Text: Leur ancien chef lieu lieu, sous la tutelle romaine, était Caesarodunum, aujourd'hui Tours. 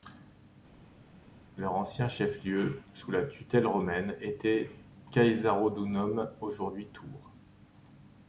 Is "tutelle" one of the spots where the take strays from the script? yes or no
no